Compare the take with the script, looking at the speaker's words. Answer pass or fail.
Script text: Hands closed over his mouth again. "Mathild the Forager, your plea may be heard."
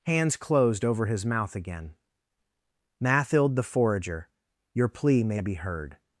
pass